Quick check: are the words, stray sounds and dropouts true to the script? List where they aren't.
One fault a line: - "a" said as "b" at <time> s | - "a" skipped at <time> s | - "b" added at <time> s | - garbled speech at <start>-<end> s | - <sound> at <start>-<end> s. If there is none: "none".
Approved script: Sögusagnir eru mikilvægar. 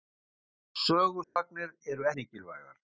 - dropout at 1.2-1.4 s